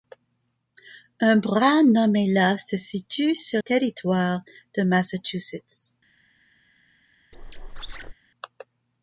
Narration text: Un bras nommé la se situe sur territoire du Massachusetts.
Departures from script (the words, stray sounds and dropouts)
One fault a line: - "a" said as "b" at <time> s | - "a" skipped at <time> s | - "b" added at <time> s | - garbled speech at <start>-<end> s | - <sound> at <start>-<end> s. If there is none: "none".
- squeak at 7.3-8.1 s